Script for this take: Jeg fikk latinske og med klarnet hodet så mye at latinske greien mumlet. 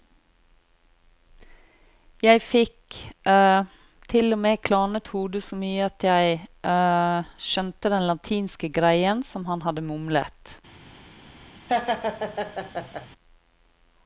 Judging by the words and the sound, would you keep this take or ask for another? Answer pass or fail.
fail